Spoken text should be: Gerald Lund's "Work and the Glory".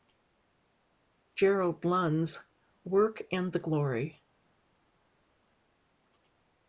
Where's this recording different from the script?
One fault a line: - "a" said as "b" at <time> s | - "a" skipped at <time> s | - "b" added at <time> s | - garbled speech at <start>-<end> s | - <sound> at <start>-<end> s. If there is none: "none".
none